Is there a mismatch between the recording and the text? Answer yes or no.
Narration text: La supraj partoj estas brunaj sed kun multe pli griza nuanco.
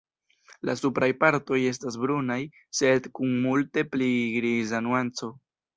no